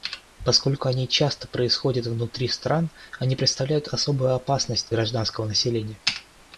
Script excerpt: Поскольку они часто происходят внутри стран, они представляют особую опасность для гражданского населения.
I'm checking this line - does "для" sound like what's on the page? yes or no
no